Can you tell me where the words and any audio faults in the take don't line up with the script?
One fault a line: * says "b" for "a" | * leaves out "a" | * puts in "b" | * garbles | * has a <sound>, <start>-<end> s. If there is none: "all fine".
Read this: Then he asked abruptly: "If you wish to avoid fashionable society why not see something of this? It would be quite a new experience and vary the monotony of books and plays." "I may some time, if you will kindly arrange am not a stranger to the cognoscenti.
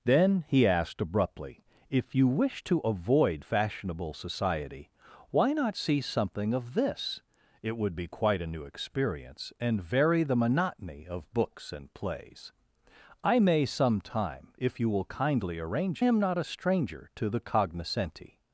all fine